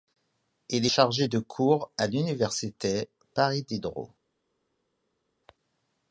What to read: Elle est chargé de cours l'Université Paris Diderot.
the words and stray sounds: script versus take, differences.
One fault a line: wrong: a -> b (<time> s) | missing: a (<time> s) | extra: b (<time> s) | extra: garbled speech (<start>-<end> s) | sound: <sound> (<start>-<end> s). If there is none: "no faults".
wrong: Elle -> Il (0.7 s)
extra: à (2.0 s)